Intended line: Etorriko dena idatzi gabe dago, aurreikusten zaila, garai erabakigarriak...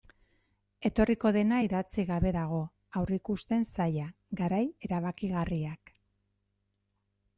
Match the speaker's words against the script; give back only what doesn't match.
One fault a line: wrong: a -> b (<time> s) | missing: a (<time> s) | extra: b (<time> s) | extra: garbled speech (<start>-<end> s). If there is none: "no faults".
no faults